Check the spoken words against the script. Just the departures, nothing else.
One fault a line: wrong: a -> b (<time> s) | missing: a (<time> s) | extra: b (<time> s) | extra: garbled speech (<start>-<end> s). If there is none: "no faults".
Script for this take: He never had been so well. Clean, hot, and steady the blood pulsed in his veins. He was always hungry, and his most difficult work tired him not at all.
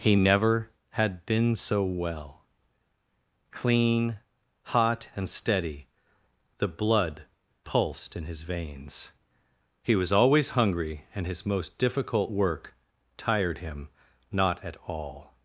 no faults